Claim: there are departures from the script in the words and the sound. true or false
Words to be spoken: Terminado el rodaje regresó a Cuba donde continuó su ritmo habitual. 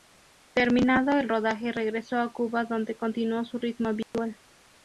true